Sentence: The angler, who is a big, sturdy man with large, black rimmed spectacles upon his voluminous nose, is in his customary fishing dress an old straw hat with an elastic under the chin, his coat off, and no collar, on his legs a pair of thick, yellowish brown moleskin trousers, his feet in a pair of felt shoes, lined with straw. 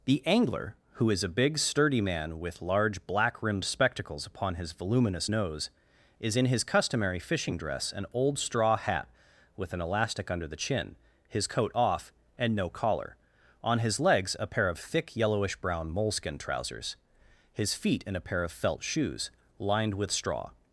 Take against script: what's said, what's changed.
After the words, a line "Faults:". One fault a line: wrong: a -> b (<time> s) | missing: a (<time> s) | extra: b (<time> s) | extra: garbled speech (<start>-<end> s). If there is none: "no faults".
The angler, who is a big, sturdy man with large, black rimmed spectacles upon his voluminous nose, is in his customary fishing dress an old straw hat with an elastic under the chin, his coat off, and no collar, on his legs a pair of thick, yellowish brown moleskin trousers, his feet in a pair of felt shoes, lined with straw.
Faults:
no faults